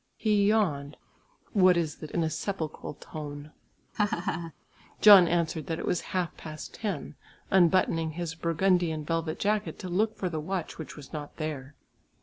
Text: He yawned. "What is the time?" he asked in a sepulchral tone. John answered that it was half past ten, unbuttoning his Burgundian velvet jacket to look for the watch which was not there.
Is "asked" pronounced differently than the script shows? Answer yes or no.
yes